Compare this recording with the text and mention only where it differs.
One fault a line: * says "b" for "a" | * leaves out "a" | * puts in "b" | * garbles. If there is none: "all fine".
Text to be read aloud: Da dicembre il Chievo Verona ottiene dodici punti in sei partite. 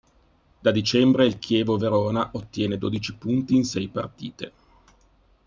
all fine